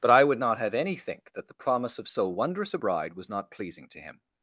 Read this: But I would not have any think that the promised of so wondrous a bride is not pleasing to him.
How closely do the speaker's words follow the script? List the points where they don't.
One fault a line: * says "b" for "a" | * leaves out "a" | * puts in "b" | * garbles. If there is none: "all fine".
* says "promise" for "promised"
* says "was" for "is"